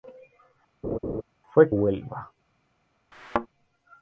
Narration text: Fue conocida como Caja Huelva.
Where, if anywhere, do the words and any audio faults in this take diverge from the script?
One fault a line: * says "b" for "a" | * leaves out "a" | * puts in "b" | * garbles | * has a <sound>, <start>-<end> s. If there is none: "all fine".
* has a laugh, 0.8-1.2 s
* leaves out "conocida como Caja"
* has a thud, 3.1-3.5 s